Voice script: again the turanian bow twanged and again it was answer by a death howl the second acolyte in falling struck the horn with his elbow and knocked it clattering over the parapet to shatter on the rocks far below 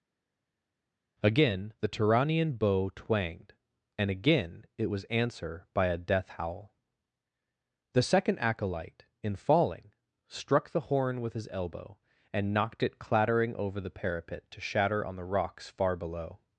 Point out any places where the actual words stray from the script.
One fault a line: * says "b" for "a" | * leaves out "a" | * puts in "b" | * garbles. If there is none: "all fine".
all fine